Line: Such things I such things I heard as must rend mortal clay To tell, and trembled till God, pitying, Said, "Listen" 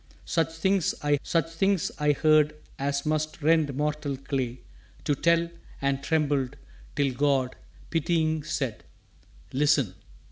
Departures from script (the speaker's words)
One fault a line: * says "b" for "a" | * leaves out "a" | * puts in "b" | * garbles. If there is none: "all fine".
all fine